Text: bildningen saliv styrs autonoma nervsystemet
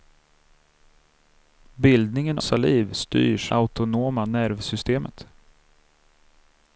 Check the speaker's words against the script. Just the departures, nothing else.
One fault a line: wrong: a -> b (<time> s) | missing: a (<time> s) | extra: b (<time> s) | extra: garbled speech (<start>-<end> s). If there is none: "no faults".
no faults